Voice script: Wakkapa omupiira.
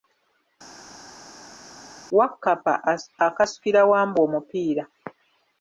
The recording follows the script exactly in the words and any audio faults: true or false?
false